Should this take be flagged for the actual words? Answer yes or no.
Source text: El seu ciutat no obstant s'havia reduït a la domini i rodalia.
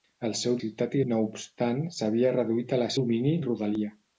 no